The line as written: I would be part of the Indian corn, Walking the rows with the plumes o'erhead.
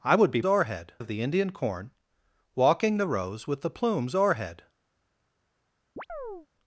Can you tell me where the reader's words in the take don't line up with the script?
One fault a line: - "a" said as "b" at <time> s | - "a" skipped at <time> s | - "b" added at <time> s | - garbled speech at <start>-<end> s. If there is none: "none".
- "part" said as "o'erhead" at 0.5 s